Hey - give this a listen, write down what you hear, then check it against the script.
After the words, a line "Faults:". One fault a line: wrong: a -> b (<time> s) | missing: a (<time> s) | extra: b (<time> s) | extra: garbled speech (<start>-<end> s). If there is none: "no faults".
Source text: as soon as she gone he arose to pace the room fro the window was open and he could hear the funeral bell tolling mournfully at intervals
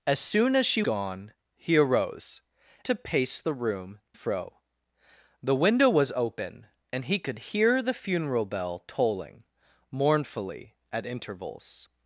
as soon as she gone he arose to pace the room fro the window was open and he could hear the funeral bell tolling mournfully at intervals
Faults:
no faults